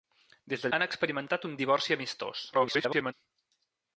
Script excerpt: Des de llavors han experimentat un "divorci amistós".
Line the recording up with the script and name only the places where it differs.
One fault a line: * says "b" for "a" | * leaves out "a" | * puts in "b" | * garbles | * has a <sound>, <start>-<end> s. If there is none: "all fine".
* leaves out "llavors"
* garbles